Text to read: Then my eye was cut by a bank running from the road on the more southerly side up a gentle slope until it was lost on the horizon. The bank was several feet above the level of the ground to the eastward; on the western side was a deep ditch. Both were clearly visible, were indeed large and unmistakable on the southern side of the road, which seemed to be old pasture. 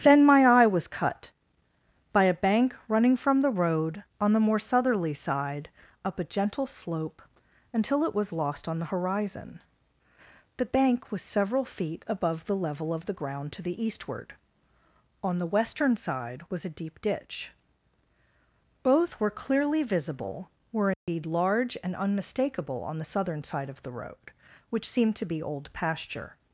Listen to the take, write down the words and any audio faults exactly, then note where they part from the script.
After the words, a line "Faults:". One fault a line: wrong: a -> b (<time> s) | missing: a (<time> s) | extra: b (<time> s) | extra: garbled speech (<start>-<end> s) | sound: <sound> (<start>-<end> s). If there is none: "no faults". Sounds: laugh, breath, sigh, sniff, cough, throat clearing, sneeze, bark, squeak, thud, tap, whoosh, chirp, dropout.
Then my eye was cut by a bank running from the road on the more southerly side up a gentle slope until it was lost on the horizon. The bank was several feet above the level of the ground to the eastward; on the western side was a deep ditch. Both were clearly visible, were indeed large and unmistakable on the southern side of the road, which seemed to be old pasture.
Faults:
sound: dropout (20.9-21.1 s)